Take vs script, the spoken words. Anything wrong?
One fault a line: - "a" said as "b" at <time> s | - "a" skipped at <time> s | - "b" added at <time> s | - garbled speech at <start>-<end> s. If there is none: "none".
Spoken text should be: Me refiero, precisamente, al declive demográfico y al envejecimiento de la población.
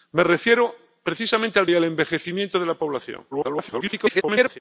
- "declive demográfico" skipped at 1.7 s
- garbled speech at 3.3-4.6 s